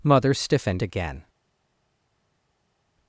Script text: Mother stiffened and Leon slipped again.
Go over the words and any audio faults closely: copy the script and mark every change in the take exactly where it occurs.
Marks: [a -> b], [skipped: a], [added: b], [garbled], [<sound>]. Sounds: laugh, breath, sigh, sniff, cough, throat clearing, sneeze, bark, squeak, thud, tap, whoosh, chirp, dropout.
Mother stiffened [skipped: and Leon slipped] again.